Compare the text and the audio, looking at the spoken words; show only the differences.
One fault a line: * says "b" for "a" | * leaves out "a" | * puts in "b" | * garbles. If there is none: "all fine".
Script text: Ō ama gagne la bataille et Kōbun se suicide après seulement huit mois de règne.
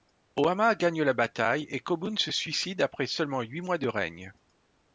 all fine